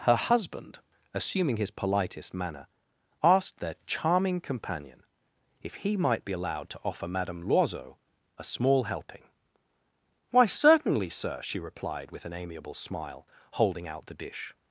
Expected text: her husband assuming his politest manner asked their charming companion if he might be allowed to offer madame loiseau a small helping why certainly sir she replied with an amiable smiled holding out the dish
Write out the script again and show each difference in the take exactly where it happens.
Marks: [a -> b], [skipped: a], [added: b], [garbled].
her husband assuming his politest manner asked their charming companion if he might be allowed to offer madame loiseau a small helping why certainly sir she replied with an amiable [smiled -> smile] holding out the dish